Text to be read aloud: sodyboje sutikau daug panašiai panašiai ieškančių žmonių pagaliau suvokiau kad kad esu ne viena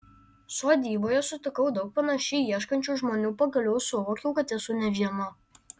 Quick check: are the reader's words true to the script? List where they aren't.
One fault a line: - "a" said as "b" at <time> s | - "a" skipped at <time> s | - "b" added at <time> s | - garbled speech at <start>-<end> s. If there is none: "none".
- "panašiai" skipped at 2.4 s
- "kad" skipped at 4.5 s